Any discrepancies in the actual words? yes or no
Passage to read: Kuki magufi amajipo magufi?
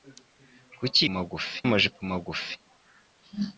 no